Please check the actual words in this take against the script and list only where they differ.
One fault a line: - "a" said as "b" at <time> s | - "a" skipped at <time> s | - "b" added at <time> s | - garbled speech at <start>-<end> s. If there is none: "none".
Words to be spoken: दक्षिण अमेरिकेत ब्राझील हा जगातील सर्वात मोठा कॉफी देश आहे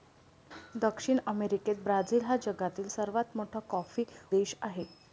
none